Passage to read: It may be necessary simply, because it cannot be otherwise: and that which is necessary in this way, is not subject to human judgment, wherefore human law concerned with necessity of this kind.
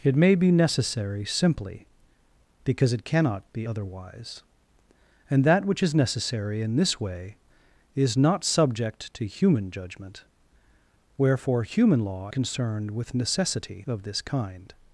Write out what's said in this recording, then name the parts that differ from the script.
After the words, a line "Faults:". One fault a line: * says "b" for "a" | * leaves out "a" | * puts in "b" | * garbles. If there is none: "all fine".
It may be necessary simply, because it cannot be otherwise: and that which is necessary in this way, is not subject to human judgment, wherefore human law concerned with necessity of this kind.
Faults:
all fine